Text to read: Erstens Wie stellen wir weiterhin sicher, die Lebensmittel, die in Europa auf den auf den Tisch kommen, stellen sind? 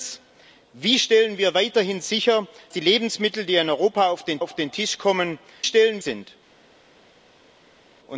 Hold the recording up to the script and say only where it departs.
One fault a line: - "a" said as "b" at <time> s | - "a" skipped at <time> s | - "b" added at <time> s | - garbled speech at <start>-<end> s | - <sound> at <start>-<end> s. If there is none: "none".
none